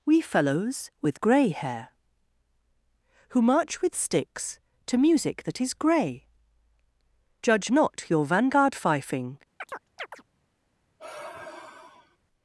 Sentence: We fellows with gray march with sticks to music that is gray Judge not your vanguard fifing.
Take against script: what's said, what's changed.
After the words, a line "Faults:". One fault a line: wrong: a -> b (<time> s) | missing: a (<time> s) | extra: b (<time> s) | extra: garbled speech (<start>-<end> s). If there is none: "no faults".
We fellows with gray hair Who march with sticks to music that is gray Judge not your vanguard fifing.
Faults:
extra: hair Who (1.5 s)